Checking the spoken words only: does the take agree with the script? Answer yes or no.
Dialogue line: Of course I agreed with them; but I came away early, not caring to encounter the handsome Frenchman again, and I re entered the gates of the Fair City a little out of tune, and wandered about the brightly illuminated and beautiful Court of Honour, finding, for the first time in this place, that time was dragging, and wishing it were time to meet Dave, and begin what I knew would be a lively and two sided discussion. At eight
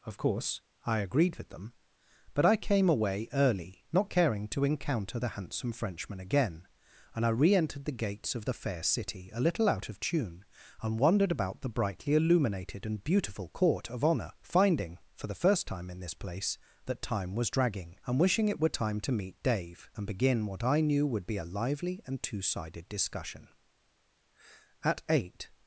yes